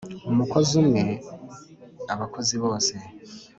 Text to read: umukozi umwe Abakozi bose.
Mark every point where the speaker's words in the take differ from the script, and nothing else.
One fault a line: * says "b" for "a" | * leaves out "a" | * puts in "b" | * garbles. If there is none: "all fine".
all fine